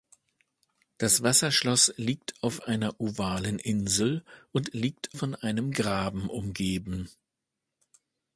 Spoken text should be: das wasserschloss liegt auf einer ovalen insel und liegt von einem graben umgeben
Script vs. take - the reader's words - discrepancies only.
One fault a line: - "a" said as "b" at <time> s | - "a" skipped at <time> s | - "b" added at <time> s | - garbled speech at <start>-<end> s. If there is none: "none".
none